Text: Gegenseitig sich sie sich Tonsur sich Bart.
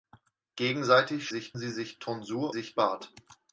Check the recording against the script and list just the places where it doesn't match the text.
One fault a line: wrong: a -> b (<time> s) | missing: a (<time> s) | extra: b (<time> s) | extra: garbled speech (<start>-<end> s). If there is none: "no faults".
no faults